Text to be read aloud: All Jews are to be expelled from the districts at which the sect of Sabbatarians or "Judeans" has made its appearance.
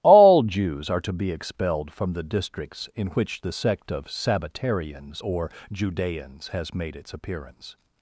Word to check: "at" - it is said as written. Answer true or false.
false